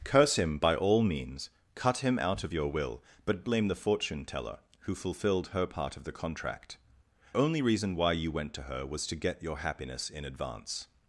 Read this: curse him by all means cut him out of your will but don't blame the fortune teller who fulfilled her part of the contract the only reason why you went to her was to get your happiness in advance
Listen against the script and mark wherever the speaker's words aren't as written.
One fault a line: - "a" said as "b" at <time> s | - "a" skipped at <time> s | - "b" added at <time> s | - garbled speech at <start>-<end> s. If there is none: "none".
- "don't" skipped at 3.4 s
- "the" skipped at 6.8 s